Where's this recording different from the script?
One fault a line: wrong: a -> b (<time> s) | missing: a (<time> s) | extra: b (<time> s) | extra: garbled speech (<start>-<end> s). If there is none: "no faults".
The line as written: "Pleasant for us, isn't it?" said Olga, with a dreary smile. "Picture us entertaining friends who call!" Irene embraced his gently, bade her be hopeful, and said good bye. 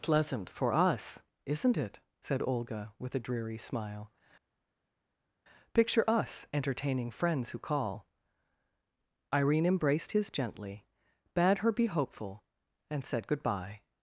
no faults